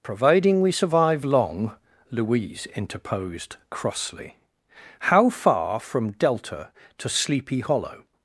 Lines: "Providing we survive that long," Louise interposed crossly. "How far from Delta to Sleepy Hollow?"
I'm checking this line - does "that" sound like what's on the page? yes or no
no